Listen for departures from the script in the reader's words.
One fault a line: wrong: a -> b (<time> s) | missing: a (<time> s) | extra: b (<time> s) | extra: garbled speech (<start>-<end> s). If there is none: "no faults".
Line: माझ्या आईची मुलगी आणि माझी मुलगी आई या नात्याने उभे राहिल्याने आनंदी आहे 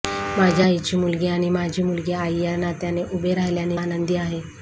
no faults